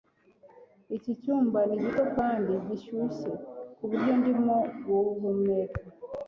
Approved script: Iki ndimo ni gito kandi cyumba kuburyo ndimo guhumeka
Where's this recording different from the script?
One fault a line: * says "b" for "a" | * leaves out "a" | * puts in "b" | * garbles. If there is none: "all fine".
* says "cyumba" for "ndimo"
* says "gishyushye" for "cyumba"